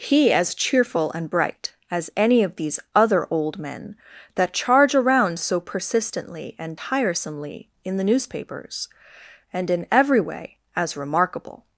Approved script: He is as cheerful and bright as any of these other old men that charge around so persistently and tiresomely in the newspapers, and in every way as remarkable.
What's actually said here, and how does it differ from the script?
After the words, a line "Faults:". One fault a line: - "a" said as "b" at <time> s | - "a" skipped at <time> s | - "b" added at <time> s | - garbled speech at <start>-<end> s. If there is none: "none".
He as cheerful and bright as any of these other old men that charge around so persistently and tiresomely in the newspapers, and in every way as remarkable.
Faults:
- "is" skipped at 0.3 s